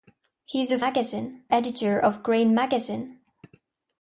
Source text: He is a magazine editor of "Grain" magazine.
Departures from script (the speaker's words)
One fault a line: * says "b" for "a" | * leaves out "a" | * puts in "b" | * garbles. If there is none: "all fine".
all fine